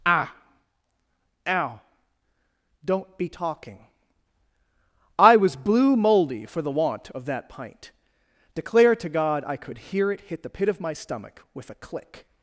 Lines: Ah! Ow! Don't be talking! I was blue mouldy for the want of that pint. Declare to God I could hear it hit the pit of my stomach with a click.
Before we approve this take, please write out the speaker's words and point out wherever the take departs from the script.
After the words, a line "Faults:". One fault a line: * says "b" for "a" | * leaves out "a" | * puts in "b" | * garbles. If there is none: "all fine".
Ah! Ow! Don't be talking! I was blue mouldy for the want of that pint. Declare to God I could hear it hit the pit of my stomach with a click.
Faults:
all fine